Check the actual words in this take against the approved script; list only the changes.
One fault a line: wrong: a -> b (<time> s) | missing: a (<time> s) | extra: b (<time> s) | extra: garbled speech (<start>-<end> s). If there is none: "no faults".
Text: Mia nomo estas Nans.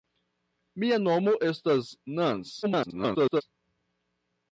extra: garbled speech (2.6-3.4 s)